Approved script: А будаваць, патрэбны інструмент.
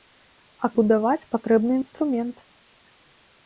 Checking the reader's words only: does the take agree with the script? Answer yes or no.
yes